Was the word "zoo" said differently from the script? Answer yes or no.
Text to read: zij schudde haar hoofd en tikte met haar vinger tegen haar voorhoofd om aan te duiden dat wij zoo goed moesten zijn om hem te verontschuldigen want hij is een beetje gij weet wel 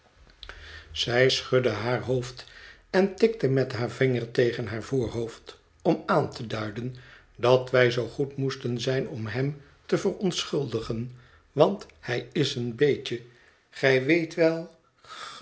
no